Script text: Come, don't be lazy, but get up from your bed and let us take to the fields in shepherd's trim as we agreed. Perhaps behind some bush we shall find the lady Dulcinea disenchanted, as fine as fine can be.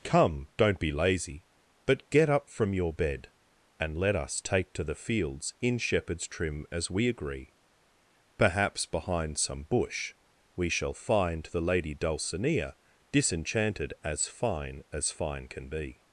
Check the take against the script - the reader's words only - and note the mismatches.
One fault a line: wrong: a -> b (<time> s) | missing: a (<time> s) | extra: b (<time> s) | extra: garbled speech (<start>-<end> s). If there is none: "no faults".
wrong: agreed -> agree (7.1 s)